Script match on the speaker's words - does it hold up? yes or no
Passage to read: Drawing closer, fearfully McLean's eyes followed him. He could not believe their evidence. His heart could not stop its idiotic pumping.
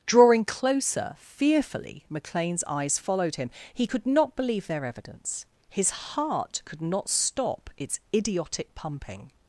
yes